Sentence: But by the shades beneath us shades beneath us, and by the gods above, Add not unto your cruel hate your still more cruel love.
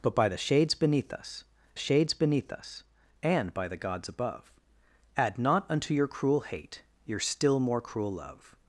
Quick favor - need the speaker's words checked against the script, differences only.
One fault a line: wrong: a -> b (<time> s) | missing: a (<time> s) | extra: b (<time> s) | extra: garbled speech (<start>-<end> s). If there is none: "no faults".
no faults